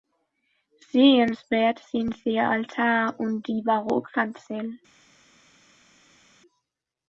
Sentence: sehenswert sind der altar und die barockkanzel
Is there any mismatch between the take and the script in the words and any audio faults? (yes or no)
no